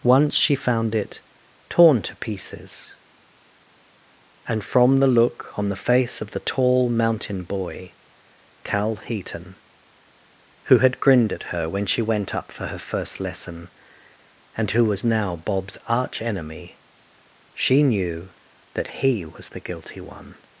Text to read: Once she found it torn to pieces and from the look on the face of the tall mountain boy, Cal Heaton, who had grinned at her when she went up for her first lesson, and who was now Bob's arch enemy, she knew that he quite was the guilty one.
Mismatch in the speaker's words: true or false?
true